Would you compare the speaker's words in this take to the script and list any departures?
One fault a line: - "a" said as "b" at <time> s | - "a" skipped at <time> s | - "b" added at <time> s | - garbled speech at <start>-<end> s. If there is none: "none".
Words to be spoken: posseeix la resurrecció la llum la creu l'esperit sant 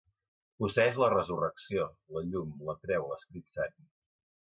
none